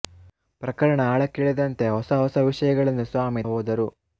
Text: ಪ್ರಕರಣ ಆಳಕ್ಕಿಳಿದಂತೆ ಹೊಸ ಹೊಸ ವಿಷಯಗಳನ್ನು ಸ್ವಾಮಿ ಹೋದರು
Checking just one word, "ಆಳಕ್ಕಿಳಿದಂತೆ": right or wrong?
right